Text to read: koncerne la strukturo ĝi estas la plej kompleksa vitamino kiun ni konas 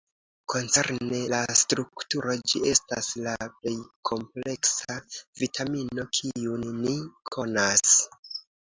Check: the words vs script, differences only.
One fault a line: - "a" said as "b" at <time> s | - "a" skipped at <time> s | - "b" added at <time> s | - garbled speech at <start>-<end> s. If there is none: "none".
none